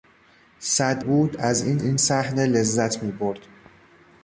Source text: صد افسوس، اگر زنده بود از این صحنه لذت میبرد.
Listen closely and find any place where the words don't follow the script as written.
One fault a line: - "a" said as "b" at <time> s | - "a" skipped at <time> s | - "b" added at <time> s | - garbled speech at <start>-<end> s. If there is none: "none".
- "افسوس اگر زنده" skipped at 1.0 s
- "این" added at 1.8 s